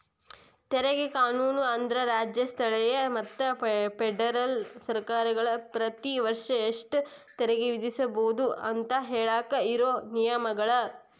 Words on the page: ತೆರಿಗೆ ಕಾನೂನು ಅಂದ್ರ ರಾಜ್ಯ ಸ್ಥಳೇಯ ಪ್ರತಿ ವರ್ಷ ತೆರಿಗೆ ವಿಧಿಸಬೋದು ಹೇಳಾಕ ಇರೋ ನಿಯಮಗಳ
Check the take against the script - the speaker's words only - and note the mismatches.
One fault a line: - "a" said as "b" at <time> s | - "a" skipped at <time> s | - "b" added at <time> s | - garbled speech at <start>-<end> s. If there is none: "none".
- "ಮತ್ತ ಫೆಡರಲ್ ಸರ್ಕಾರಗಳ" added at 3.1 s
- "ಎಷ್ಟ" added at 6.7 s
- "ಅಂತ" added at 8.7 s